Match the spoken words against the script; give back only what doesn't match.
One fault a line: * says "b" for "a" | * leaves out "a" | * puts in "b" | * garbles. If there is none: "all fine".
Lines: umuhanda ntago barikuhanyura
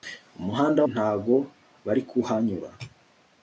all fine